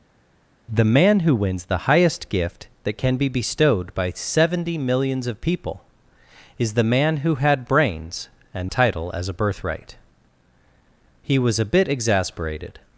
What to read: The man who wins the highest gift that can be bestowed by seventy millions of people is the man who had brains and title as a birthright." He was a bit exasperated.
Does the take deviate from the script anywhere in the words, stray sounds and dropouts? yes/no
no